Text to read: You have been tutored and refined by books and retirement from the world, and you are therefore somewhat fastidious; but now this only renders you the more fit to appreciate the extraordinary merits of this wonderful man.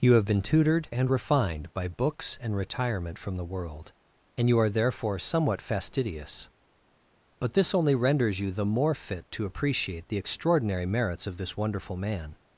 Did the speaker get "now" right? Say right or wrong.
wrong